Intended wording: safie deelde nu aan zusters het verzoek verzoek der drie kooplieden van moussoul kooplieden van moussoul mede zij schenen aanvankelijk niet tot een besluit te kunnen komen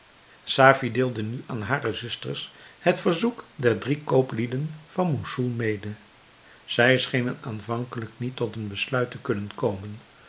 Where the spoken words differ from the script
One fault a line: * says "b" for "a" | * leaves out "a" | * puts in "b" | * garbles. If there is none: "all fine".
* puts in "hare"
* leaves out "verzoek"
* leaves out "kooplieden van moussoul"